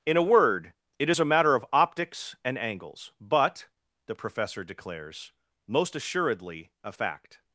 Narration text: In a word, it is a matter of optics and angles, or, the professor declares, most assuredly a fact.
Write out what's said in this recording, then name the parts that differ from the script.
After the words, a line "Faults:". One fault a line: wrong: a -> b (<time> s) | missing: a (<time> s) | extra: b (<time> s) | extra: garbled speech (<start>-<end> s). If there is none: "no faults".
In a word, it is a matter of optics and angles, but, the professor declares, most assuredly a fact.
Faults:
wrong: or -> but (3.2 s)